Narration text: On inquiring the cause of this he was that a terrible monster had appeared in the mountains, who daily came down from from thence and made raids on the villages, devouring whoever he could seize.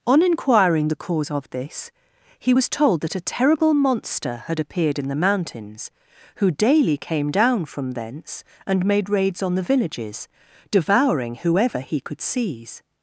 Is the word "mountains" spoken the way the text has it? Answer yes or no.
yes